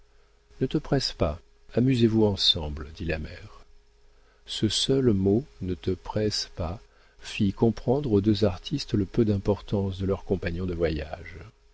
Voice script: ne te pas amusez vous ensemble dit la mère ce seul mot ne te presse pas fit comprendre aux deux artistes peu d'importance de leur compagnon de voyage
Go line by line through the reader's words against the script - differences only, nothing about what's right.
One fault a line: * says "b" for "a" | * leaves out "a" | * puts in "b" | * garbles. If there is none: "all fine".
* puts in "presse"
* puts in "le"